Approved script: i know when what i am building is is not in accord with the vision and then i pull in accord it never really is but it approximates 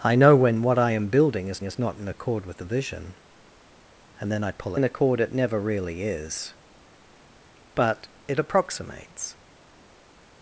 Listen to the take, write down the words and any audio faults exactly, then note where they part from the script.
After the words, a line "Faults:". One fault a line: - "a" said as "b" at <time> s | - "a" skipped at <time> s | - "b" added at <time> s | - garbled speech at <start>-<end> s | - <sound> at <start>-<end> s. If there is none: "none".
i know when what i am building is is not in accord with the vision and then i pull in accord it never really is but it approximates
Faults:
none